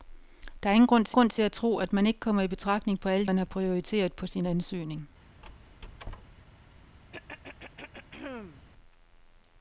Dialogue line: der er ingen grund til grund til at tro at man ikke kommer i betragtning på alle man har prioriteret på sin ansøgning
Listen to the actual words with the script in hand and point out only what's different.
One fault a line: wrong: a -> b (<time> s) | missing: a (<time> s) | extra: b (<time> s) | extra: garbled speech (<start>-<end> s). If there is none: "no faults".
no faults